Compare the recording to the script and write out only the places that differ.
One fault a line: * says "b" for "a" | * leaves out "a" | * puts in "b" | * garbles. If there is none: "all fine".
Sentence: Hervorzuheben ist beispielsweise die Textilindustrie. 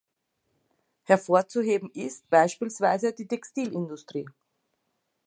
all fine